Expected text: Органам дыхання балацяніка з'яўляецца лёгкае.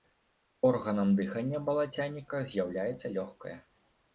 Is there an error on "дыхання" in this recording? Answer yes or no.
no